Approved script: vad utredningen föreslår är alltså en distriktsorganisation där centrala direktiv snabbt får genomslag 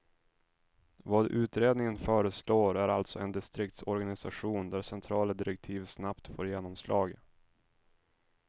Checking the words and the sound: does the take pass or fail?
pass